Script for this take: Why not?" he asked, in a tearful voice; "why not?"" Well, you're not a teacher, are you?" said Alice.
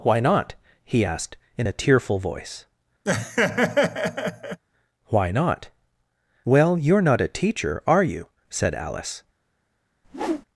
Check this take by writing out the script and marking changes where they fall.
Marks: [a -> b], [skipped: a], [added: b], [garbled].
Why not?" he asked, in a tearful voice; "why not?"" Well, you're not a teacher, are you?" said Alice.